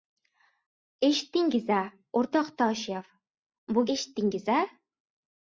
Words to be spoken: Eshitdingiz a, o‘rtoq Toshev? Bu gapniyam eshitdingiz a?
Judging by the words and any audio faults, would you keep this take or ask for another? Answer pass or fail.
fail